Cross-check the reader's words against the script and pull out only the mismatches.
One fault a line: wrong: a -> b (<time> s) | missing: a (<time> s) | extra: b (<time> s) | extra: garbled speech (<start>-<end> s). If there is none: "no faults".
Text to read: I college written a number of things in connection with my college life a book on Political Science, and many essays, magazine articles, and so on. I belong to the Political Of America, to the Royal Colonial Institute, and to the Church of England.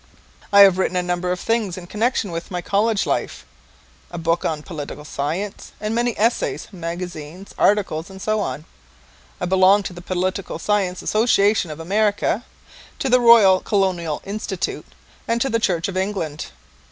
wrong: college -> have (0.6 s)
extra: Science Association (10.6 s)